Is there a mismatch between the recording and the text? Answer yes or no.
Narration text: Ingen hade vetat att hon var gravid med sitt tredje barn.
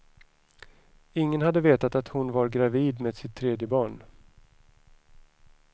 no